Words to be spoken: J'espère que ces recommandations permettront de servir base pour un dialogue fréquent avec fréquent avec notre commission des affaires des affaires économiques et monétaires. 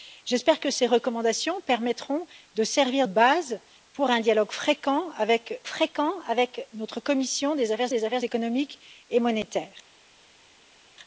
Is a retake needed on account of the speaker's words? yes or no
no